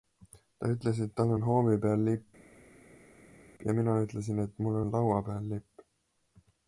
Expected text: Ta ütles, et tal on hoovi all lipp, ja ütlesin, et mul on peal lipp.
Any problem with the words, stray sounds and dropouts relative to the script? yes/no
yes